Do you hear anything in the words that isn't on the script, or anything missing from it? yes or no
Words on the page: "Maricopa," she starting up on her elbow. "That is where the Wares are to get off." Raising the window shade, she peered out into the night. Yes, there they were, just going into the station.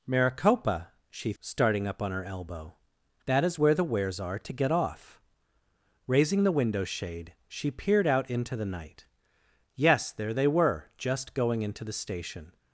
no